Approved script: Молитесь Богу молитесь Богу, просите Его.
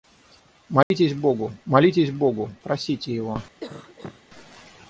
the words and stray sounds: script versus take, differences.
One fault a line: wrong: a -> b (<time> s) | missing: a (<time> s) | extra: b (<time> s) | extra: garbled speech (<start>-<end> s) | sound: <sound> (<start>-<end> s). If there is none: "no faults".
sound: dropout (0.8-0.9 s)
sound: cough (3.6-4.2 s)